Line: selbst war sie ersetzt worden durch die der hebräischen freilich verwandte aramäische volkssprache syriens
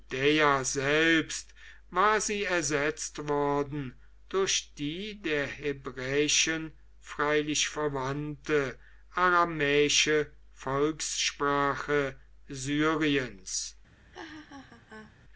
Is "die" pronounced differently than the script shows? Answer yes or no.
no